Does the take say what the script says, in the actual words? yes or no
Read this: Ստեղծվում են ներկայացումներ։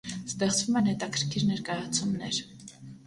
no